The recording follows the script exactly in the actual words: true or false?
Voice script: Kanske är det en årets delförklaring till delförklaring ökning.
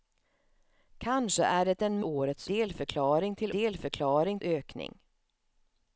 true